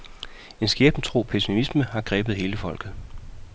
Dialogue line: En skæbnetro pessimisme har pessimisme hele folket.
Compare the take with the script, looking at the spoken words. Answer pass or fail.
fail